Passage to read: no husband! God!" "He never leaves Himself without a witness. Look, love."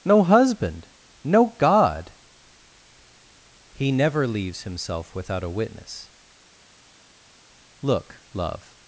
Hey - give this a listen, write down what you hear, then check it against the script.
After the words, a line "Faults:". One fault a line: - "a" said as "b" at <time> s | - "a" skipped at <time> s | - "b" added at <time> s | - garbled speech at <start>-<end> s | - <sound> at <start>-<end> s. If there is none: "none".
no husband! no God!" "He never leaves Himself without a witness. Look, love."
Faults:
- "no" added at 1.2 s